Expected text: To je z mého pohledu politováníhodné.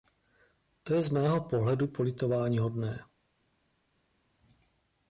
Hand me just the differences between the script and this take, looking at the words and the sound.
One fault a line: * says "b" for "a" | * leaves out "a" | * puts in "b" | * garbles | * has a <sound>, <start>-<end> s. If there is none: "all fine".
all fine